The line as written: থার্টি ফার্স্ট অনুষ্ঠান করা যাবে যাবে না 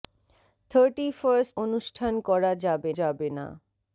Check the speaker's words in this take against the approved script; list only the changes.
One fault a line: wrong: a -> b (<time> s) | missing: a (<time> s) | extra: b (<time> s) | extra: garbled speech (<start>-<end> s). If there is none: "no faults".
no faults